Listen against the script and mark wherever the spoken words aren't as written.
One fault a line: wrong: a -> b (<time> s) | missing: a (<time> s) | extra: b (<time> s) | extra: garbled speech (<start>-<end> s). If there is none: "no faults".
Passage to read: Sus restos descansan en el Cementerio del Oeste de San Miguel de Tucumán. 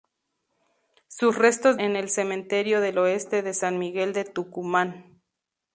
missing: descansan (1.8 s)